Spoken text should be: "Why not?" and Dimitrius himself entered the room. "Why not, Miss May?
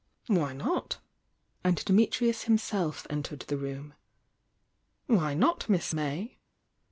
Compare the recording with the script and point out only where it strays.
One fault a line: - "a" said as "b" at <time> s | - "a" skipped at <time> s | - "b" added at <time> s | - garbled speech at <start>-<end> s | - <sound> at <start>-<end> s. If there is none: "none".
none